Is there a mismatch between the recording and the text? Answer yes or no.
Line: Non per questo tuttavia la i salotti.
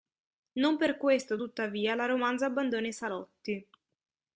yes